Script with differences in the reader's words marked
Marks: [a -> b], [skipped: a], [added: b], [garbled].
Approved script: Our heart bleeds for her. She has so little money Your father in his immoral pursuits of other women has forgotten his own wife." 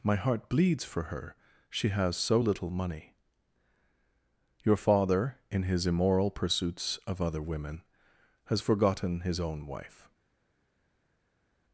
[Our -> My] heart bleeds for her. She has so little money Your father in his immoral pursuits of other women has forgotten his own wife."